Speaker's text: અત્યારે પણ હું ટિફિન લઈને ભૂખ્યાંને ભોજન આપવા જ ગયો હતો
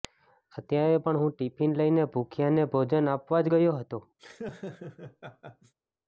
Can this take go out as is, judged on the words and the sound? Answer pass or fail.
fail